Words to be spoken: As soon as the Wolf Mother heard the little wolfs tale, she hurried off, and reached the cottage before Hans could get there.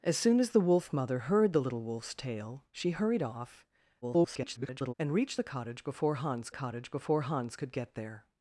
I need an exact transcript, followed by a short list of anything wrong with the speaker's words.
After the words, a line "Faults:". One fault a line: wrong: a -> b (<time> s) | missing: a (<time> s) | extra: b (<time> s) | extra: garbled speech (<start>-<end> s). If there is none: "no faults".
As soon as the Wolf Mother heard the little wolfs tale, she hurried off, [garbled] and reached the cottage before Hans cottage before Hans could get there.
Faults:
extra: garbled speech (4.0-4.9 s)
extra: cottage before Hans (6.5 s)